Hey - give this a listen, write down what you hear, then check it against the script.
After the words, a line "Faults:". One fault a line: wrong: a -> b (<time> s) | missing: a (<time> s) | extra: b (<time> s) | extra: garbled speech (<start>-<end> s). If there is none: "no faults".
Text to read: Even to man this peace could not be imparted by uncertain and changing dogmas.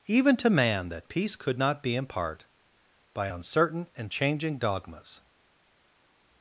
Even to man that peace could not be impart by uncertain and changing dogmas.
Faults:
wrong: this -> that (0.9 s)
wrong: imparted -> impart (2.0 s)